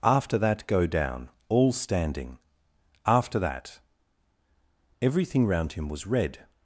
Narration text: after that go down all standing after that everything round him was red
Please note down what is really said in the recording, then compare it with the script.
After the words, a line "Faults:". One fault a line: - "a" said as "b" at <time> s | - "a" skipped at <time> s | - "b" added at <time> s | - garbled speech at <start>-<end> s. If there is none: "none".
after that go down all standing after that everything round him was red
Faults:
none